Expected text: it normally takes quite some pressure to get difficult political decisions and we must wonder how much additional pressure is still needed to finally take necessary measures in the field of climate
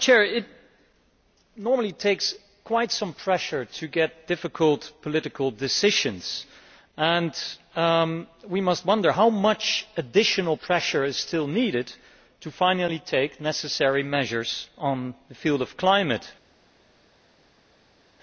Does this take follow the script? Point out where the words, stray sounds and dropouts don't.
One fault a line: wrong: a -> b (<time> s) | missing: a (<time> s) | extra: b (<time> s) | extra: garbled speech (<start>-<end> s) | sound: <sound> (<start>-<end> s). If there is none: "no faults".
no faults